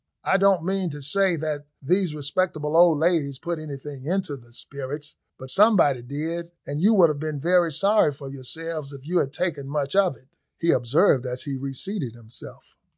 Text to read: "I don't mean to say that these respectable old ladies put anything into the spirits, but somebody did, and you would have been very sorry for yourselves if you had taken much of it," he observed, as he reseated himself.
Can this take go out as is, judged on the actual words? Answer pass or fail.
pass